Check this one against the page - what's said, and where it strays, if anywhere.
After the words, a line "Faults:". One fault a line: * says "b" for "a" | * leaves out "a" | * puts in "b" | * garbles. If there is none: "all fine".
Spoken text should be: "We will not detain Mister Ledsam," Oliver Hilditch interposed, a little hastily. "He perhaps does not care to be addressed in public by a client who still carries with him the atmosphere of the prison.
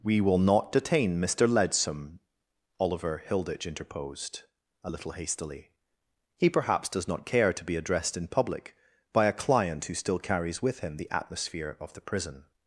"We will not detain Mister Ledsam," Oliver Hilditch interposed, a little hastily. "He perhaps does not care to be addressed in public by a client who still carries with him the atmosphere of the prison.
Faults:
all fine